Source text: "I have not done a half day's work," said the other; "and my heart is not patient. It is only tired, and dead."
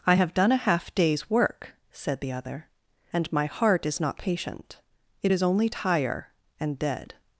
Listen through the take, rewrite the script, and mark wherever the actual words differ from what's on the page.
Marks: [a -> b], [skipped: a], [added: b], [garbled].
"I have [skipped: not] done a half day's work," said the other; "and my heart is not patient. It is only [tired, -> tire] and dead."